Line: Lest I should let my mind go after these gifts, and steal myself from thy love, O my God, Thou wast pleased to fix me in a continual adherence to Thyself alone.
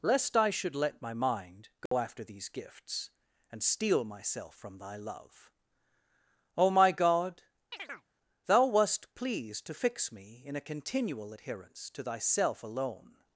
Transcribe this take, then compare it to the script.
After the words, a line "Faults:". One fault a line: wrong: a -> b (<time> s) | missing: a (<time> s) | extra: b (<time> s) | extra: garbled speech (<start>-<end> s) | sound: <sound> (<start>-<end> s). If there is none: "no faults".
Lest I should let my mind go after these gifts, and steal myself from thy love, O my God, Thou wast pleased to fix me in a continual adherence to Thyself alone.
Faults:
sound: dropout (1.9-1.9 s)
sound: chirp (7.7-8.1 s)